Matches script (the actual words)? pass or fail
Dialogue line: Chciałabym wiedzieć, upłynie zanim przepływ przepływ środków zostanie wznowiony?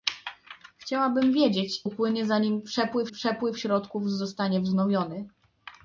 pass